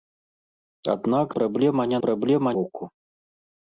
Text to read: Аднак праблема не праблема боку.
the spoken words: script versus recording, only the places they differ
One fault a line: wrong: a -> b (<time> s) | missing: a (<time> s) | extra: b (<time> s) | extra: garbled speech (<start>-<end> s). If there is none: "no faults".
no faults